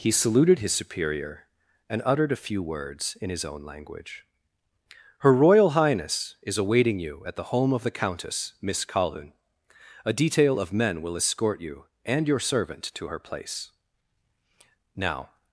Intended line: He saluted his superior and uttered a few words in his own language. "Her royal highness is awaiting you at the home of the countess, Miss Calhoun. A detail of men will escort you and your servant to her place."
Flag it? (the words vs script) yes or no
yes